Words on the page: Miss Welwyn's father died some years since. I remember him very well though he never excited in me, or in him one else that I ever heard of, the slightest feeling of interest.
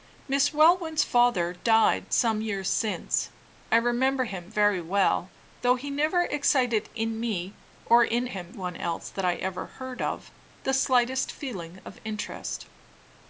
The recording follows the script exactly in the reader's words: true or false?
true